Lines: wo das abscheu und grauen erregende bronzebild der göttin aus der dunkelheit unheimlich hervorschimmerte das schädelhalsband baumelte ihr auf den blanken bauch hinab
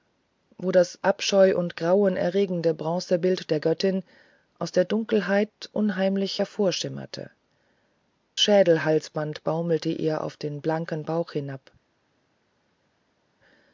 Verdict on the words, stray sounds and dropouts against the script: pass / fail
fail